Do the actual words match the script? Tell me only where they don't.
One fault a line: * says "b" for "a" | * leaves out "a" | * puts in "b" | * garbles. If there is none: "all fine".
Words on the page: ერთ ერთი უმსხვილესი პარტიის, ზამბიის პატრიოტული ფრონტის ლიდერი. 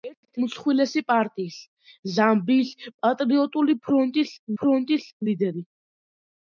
* leaves out "ერთი"
* puts in "ფრონტის"